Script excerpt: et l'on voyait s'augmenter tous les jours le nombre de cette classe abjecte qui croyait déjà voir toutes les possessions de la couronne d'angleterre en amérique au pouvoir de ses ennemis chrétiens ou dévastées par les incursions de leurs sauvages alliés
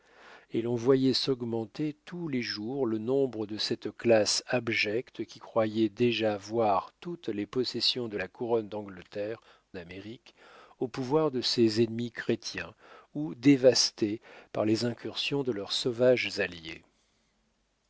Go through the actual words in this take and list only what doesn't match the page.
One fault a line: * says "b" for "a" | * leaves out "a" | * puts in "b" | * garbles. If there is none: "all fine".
* leaves out "en"